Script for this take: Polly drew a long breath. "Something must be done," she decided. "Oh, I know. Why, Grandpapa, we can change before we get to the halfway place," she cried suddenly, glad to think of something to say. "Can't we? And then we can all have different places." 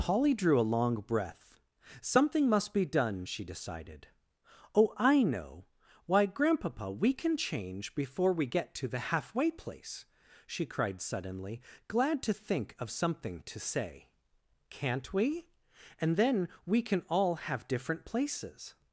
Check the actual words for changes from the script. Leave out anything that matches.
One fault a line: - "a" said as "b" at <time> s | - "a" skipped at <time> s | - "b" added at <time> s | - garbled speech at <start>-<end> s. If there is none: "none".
none